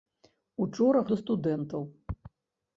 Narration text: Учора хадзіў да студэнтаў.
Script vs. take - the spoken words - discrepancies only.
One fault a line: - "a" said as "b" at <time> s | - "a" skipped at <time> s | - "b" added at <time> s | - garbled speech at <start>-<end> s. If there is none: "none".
- "хадзіў" skipped at 1.0 s